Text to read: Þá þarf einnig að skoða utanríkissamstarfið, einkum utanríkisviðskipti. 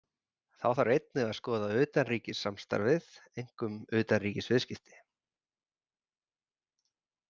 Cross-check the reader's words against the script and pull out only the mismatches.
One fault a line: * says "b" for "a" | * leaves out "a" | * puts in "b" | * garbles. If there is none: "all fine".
all fine